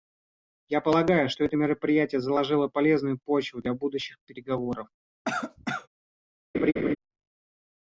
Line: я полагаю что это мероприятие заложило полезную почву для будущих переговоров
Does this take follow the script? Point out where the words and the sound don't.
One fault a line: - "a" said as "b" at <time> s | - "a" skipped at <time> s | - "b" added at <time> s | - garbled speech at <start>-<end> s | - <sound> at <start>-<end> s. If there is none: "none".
- cough at 5.2-5.9 s
- laugh at 6.5-7.0 s